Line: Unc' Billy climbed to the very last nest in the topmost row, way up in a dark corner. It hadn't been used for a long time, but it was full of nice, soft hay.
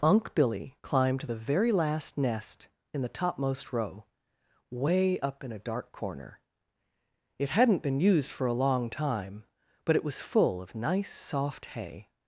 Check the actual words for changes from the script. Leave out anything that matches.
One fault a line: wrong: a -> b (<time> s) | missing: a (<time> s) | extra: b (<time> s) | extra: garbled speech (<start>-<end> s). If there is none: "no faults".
no faults